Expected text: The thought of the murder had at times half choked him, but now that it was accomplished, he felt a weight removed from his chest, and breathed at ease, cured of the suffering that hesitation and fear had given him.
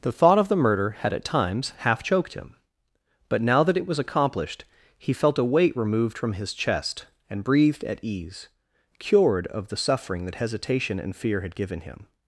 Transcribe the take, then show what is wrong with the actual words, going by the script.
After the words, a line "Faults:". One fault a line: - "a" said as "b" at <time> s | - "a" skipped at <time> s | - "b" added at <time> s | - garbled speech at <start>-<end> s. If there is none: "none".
The thought of the murder had at times half choked him, but now that it was accomplished, he felt a weight removed from his chest, and breathed at ease, cured of the suffering that hesitation and fear had given him.
Faults:
none